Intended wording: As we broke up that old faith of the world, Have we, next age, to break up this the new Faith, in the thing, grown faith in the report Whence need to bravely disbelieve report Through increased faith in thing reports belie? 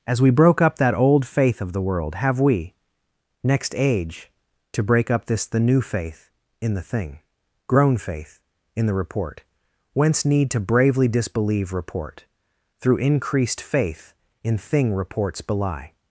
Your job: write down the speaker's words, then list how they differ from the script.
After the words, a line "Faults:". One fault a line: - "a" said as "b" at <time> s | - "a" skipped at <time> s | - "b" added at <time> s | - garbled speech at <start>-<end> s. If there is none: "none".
As we broke up that old faith of the world, Have we, next age, to break up this the new Faith, in the thing, grown faith in the report Whence need to bravely disbelieve report Through increased faith in thing reports belie?
Faults:
none